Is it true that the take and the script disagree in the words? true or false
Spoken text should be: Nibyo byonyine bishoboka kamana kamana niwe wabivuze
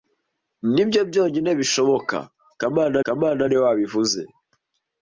false